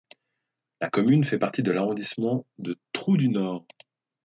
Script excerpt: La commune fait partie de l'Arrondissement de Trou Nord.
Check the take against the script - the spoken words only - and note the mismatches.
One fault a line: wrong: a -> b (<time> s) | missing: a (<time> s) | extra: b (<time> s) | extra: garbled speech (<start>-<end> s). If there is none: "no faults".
extra: du (3.2 s)